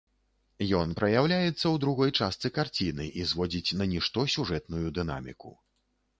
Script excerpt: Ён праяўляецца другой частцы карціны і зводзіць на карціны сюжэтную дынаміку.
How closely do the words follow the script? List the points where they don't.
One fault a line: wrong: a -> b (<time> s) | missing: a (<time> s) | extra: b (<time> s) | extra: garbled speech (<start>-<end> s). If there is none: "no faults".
extra: ў (1.5 s)
wrong: карціны -> нішто (4.0 s)